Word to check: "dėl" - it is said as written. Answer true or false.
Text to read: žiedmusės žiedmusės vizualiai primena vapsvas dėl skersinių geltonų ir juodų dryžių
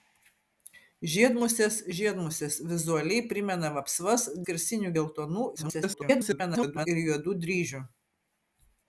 false